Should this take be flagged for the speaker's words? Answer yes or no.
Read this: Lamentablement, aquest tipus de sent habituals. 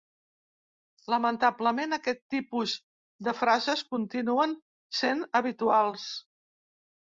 yes